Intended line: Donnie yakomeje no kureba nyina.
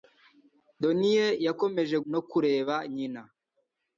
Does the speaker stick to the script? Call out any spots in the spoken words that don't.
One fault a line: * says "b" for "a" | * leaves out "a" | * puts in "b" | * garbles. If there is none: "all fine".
all fine